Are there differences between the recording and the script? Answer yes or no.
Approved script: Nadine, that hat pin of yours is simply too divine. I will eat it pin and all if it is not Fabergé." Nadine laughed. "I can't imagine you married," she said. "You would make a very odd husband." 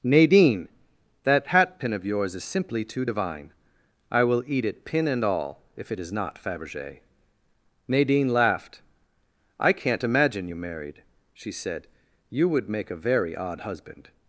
no